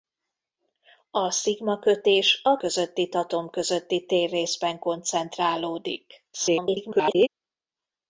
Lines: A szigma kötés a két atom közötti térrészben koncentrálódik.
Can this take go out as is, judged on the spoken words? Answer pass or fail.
fail